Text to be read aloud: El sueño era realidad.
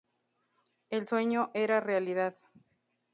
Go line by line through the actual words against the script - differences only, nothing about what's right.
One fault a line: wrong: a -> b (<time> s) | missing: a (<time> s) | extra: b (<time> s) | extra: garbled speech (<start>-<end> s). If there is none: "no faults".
no faults